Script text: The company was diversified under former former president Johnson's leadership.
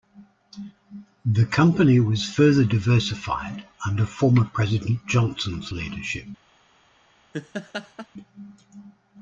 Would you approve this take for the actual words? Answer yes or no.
no